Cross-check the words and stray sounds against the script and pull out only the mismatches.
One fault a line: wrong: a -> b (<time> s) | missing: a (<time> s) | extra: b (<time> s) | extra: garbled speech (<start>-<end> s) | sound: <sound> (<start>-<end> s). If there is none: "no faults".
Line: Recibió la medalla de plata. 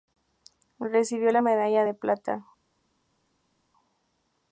no faults